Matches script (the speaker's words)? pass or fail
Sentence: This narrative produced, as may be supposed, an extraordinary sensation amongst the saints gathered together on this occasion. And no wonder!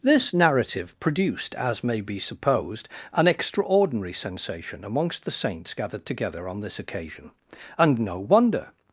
pass